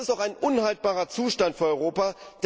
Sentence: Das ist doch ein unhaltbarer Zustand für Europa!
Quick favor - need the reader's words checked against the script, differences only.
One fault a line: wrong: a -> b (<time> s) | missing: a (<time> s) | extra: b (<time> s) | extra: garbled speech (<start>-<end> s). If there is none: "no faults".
no faults